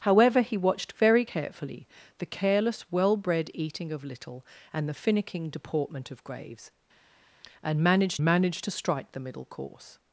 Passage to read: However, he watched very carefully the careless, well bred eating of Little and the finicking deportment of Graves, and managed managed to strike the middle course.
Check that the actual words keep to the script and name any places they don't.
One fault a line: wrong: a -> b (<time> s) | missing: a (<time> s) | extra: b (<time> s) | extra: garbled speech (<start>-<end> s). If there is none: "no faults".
no faults